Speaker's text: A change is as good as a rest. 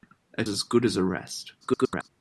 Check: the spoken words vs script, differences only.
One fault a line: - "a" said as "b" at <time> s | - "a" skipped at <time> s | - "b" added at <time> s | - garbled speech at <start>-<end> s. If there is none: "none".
- "change is" skipped at 0.4 s
- garbled speech at 1.6-2.1 s